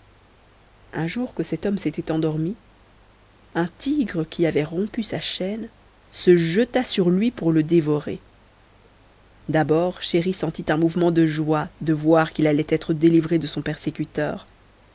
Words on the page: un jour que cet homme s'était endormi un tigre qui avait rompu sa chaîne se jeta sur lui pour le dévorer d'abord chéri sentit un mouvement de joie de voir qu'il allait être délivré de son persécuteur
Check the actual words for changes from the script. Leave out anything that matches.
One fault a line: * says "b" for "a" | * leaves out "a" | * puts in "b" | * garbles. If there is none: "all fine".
all fine